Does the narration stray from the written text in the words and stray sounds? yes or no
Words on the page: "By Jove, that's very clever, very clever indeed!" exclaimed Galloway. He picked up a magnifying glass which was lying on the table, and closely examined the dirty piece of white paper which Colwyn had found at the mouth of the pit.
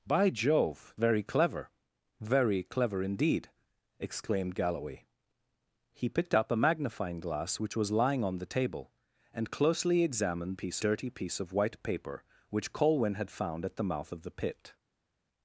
yes